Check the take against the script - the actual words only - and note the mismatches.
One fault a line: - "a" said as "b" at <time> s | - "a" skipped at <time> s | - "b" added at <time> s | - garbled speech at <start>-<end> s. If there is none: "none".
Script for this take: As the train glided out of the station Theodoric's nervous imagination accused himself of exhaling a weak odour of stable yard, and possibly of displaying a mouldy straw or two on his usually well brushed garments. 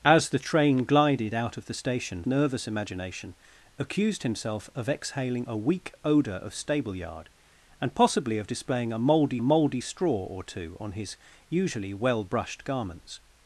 - "Theodoric's" skipped at 2.2 s
- "mouldy" added at 9.4 s